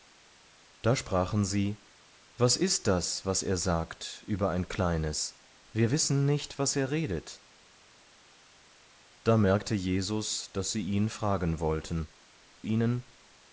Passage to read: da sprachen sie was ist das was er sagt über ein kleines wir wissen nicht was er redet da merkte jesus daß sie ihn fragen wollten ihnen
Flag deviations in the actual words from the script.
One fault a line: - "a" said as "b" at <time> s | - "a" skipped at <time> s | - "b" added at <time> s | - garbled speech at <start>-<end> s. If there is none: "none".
none